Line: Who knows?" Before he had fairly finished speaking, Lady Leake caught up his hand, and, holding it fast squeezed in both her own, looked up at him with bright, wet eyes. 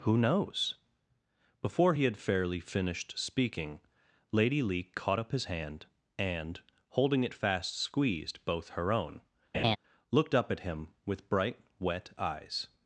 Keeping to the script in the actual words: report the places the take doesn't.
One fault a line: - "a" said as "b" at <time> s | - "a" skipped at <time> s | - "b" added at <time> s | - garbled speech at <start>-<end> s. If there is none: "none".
- "in" skipped at 8.4 s